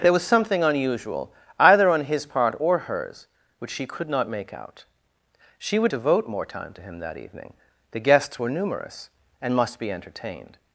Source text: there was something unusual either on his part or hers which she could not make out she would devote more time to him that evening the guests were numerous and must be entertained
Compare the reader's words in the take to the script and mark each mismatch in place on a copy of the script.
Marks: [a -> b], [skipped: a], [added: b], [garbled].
there was something unusual either on his part or hers which she could not make out she would devote more time to him that evening the guests were numerous and must be entertained